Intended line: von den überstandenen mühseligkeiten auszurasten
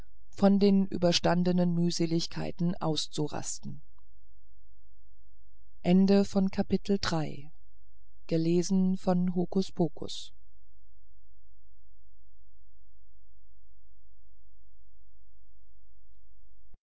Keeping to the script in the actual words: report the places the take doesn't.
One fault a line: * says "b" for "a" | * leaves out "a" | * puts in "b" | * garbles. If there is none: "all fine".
all fine